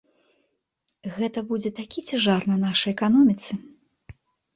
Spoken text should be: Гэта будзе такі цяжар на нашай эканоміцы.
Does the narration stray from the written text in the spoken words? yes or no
no